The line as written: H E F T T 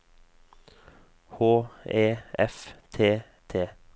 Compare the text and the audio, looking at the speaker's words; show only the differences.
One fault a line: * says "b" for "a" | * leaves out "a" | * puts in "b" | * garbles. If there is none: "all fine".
all fine